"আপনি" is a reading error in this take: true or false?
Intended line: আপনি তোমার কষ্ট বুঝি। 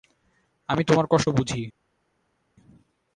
true